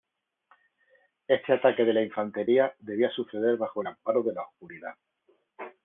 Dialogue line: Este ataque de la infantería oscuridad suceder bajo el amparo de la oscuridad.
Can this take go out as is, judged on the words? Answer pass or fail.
fail